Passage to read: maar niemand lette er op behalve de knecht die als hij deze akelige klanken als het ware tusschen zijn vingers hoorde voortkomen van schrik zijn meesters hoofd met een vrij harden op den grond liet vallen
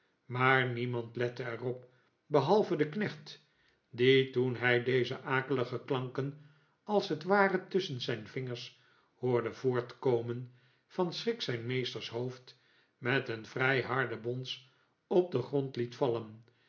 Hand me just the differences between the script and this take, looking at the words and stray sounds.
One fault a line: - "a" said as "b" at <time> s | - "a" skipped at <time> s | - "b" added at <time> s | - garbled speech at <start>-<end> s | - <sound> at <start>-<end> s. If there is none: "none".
- "als" said as "toen" at 4.3 s
- "bons" added at 14.2 s